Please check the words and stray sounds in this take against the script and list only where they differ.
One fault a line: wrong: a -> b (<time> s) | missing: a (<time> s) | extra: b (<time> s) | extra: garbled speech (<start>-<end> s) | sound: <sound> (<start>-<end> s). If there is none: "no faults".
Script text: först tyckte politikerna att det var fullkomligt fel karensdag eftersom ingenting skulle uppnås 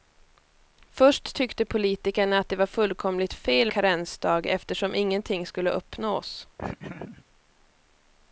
sound: laugh (6.6-7.2 s)